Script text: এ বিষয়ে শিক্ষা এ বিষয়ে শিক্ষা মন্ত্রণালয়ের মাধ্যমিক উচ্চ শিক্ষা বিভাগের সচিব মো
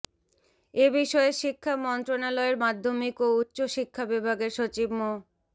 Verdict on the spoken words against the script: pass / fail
fail